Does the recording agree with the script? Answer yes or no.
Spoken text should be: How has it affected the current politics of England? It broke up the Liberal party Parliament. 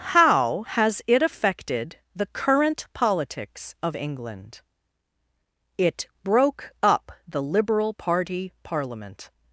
yes